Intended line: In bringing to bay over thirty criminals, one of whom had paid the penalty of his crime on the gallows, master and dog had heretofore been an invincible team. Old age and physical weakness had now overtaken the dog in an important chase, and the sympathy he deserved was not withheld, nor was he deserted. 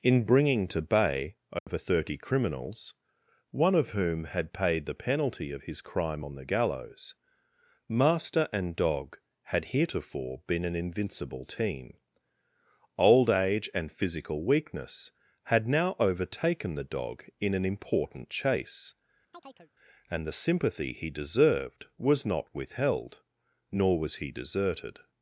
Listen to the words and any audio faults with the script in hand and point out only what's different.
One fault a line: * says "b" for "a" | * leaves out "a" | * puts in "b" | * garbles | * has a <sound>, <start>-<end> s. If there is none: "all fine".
* has a dropout, 1.6-1.7 s
* has a chirp, 19.3-19.7 s